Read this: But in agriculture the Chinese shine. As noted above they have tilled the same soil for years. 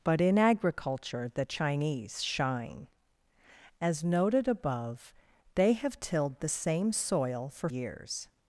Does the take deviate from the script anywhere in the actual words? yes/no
no